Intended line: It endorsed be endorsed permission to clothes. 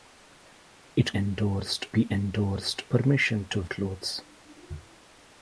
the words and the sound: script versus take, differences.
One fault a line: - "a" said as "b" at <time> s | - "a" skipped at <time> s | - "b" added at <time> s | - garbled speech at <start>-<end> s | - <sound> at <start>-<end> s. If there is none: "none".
none